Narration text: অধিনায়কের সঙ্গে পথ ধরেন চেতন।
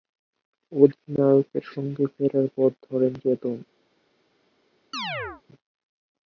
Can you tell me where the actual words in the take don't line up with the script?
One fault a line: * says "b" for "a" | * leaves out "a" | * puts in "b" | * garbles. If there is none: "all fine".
* puts in "ফেরার"